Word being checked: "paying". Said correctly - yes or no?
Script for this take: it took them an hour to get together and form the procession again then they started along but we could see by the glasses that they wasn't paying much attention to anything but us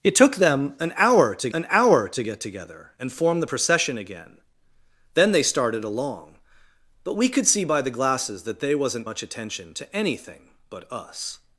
no